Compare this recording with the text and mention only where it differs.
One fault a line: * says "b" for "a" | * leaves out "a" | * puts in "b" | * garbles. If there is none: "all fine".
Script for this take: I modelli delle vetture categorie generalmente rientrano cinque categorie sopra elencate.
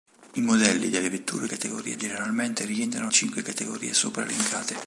all fine